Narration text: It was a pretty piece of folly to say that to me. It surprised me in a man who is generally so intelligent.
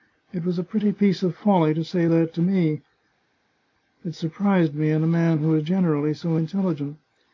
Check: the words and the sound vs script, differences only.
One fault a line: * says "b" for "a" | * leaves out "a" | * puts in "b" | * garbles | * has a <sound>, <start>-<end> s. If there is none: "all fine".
all fine